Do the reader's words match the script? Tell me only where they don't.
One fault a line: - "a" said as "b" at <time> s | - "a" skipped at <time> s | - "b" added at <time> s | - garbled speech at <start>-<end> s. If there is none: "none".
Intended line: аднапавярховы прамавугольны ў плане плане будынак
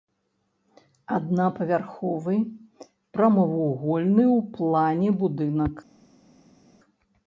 - "плане" skipped at 5.1 s